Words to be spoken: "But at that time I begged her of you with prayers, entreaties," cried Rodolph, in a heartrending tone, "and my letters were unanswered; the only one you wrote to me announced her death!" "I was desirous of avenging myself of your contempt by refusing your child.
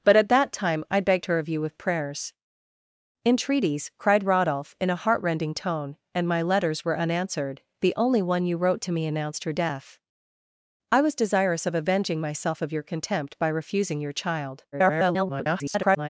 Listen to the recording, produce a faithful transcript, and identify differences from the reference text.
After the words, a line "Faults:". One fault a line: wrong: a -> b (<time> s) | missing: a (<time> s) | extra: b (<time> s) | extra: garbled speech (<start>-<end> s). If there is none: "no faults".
"But at that time I begged her of you with prayers, entreaties," cried Rodolph, in a heartrending tone, "and my letters were unanswered; the only one you wrote to me announced her death!" "I was desirous of avenging myself of your contempt by refusing your child. [garbled]
Faults:
extra: garbled speech (14.7-16.1 s)